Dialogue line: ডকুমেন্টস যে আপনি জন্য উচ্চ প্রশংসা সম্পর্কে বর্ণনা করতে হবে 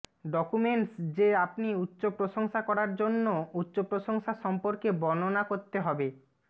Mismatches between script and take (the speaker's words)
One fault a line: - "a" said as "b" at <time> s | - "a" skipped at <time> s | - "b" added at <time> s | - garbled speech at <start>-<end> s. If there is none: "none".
- "উচ্চ প্রশংসা করার" added at 1.8 s